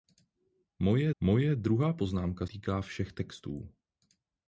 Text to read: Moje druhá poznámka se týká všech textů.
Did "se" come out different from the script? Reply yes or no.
yes